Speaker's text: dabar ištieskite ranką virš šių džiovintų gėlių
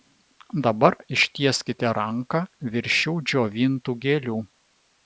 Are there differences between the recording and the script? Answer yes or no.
no